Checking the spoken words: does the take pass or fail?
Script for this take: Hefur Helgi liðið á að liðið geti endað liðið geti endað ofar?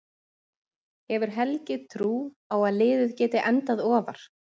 fail